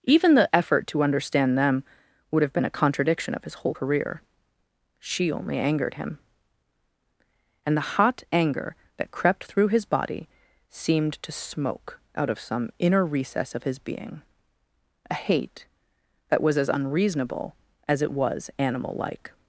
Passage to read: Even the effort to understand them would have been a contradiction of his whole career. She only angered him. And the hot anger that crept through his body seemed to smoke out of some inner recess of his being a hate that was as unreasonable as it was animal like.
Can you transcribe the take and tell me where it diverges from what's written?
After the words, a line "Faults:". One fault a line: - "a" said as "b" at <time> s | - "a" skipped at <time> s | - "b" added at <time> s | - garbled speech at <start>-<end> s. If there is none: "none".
Even the effort to understand them would have been a contradiction of his whole career. She only angered him. And the hot anger that crept through his body seemed to smoke out of some inner recess of his being a hate that was as unreasonable as it was animal like.
Faults:
none